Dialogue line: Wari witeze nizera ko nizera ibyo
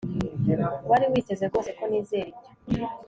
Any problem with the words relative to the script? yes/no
yes